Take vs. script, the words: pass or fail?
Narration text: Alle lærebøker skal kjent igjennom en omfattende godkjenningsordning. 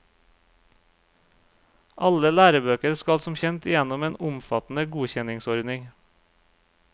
fail